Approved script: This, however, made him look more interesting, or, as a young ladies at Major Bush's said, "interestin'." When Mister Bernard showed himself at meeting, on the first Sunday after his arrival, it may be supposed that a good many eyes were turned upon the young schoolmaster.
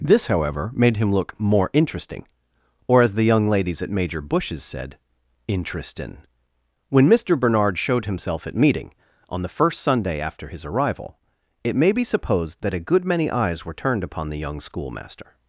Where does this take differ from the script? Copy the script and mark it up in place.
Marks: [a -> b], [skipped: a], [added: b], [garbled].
This, however, made him look more interesting, or, as [a -> the] young ladies at Major Bush's said, "interestin'." When Mister Bernard showed himself at meeting, on the first Sunday after his arrival, it may be supposed that a good many eyes were turned upon the young schoolmaster.